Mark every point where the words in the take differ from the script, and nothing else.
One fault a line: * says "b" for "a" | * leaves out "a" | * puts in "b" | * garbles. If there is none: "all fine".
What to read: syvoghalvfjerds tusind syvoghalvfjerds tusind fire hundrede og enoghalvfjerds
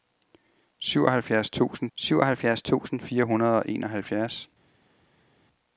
all fine